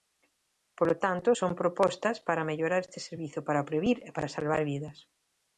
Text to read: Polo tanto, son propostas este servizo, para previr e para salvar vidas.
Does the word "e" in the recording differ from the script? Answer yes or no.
no